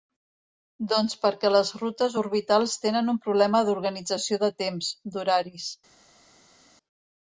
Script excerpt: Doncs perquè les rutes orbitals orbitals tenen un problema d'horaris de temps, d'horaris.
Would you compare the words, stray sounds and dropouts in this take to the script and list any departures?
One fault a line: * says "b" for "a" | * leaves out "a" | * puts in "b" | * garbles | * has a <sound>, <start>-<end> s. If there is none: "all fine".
* leaves out "orbitals"
* says "d'organització" for "d'horaris"